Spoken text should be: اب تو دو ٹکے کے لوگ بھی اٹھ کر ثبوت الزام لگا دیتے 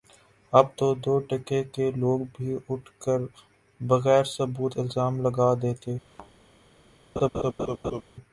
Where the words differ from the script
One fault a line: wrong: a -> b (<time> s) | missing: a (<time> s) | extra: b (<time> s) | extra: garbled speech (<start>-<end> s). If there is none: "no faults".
extra: بغیر (3.8 s)